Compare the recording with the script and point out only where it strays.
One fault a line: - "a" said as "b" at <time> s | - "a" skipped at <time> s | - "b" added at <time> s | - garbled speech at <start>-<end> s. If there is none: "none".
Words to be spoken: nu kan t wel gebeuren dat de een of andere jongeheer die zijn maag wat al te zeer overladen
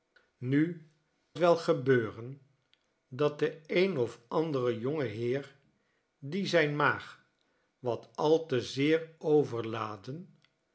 - "kan" skipped at 0.9 s